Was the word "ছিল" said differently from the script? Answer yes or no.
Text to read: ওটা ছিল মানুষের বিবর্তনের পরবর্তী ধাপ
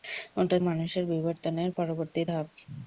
yes